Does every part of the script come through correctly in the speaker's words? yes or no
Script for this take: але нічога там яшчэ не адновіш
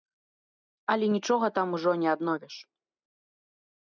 no